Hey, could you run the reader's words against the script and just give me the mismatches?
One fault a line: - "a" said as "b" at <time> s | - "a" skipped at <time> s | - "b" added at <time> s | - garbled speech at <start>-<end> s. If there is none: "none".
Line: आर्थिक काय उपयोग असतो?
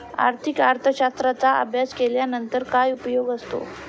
- "अर्थशास्त्राचा अभ्यास केल्यानंतर" added at 0.6 s